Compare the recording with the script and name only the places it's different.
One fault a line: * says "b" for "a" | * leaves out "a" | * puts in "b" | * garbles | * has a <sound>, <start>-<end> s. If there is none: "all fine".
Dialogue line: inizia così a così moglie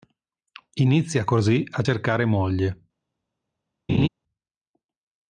* says "cercare" for "così"
* has a laugh, 3.9-4.1 s